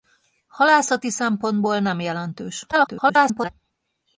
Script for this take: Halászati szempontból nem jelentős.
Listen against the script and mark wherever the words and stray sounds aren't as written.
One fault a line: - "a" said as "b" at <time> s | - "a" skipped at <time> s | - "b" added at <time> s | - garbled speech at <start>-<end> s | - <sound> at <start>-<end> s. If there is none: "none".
- garbled speech at 2.7-3.5 s